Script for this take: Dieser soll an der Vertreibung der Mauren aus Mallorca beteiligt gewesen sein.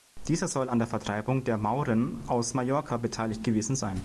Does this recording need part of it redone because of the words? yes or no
no